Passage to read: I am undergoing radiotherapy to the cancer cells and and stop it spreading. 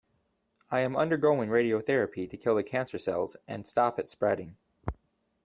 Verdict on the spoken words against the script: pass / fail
fail